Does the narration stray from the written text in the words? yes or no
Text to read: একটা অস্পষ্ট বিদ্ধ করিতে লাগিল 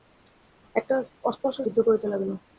no